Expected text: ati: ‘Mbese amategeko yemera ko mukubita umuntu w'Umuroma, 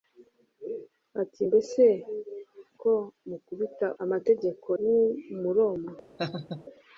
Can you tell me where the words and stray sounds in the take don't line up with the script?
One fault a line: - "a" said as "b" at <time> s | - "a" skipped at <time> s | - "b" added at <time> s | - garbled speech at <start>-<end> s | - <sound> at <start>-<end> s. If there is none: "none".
- "amategeko yemera" skipped at 1.8 s
- "umuntu" said as "amategeko" at 4.0 s
- laugh at 6.2-6.6 s